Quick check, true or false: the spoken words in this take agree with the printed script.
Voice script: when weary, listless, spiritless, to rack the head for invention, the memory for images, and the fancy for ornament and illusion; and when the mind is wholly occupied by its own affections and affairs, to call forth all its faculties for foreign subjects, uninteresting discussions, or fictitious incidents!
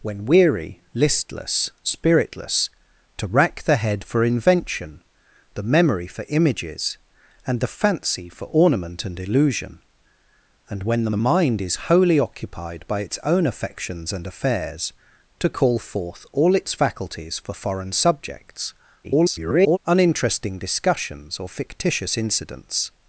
false